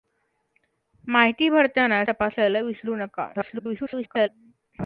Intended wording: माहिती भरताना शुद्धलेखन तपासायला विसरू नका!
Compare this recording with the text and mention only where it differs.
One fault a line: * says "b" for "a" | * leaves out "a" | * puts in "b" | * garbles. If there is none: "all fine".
* leaves out "शुद्धलेखन"
* garbles